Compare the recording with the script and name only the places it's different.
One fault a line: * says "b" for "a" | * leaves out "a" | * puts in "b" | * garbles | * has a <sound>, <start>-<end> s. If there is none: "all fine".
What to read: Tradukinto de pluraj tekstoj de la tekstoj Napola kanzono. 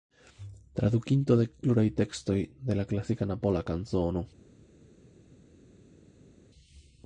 * says "klasika" for "tekstoj"